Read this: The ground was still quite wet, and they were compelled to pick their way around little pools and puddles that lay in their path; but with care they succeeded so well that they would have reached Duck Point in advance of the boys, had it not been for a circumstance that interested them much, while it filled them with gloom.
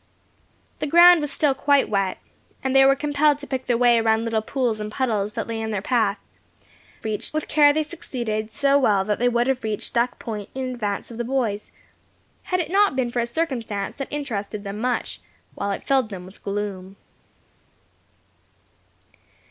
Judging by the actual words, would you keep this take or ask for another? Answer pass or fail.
fail